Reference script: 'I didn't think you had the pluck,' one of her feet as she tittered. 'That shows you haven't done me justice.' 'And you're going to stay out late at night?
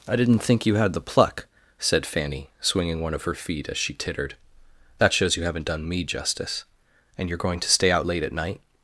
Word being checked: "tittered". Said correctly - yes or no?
yes